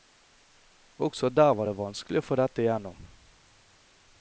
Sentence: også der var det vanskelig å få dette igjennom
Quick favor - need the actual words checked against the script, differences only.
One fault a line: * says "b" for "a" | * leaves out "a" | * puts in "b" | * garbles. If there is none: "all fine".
all fine